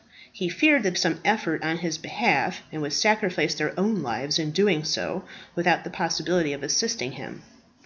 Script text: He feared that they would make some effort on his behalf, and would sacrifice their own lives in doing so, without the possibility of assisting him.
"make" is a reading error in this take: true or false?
true